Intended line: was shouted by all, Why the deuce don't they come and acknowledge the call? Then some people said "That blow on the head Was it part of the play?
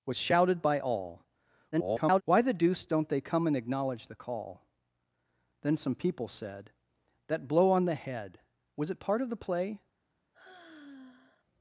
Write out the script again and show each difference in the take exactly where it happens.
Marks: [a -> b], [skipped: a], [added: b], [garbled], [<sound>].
was shouted by all, [garbled] Why the deuce don't they come and acknowledge the call? Then some people said "That blow on the head Was it part of the play? [sigh]